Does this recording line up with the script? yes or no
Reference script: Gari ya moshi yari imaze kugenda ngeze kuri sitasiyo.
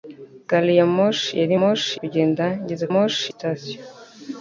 no